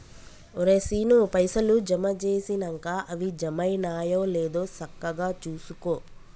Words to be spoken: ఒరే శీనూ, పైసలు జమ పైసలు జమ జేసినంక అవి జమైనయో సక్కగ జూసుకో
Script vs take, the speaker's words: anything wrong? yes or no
yes